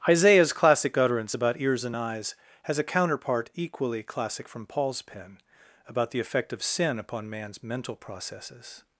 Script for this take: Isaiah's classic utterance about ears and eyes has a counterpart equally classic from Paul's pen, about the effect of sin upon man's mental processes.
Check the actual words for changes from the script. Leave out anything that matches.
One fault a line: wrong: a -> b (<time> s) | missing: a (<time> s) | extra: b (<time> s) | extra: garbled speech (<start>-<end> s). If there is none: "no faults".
no faults